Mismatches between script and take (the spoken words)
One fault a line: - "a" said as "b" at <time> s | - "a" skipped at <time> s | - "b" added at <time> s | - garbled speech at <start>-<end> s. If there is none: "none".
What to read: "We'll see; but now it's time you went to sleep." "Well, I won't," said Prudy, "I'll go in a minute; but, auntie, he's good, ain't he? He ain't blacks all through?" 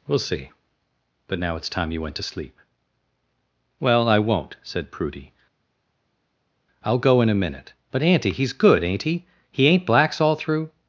none